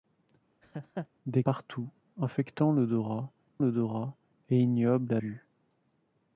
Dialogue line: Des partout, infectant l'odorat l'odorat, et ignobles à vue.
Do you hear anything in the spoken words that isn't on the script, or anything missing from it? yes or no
no